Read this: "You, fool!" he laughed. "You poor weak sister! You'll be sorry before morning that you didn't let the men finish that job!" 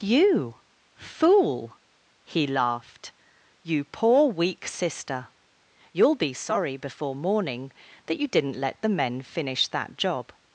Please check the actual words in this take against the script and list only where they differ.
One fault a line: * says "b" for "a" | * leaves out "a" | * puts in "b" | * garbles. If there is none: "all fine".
all fine